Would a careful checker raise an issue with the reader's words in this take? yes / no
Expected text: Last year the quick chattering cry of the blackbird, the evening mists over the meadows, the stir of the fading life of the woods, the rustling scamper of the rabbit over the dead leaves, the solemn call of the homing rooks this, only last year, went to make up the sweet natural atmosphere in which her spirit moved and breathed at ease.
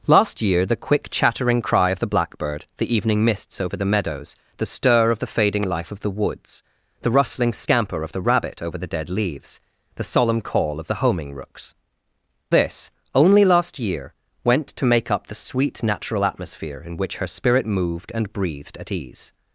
no